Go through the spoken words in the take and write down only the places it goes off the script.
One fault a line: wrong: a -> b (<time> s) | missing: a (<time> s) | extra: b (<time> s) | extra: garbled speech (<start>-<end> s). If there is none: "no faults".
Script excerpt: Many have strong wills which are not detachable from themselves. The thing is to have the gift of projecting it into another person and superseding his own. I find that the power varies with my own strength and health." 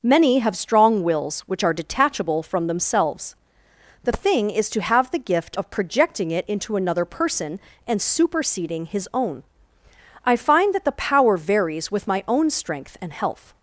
missing: not (1.7 s)